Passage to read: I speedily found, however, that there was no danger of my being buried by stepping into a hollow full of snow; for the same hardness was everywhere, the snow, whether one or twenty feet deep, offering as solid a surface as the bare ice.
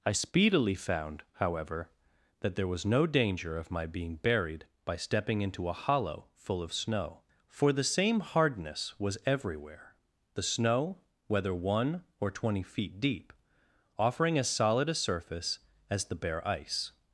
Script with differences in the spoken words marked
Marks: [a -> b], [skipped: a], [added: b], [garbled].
I speedily found, however, that there was no danger of my being buried by stepping into a hollow full of snow; for the same hardness was everywhere, the snow, whether one or twenty feet deep, offering as solid a surface as the bare ice.